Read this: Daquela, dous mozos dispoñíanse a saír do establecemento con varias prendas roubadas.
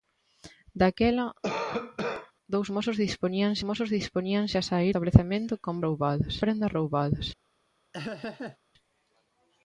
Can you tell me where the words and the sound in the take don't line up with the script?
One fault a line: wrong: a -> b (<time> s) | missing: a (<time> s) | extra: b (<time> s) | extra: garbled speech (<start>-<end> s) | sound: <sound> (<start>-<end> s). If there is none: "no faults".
sound: cough (1.4-2.3 s)
extra: mozos dispoñíanse (3.7 s)
missing: do (4.9 s)
wrong: varias -> roubadas (5.8 s)
sound: laugh (7.9-8.6 s)